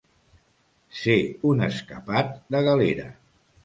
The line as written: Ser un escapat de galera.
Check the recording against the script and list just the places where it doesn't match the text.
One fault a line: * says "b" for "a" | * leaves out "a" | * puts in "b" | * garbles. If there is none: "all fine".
all fine